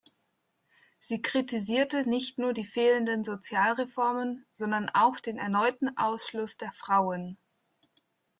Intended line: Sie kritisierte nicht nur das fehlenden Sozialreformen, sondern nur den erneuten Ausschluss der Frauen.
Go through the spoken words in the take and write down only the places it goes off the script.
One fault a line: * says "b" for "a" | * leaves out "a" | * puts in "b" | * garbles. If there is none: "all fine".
* says "die" for "das"
* says "auch" for "nur"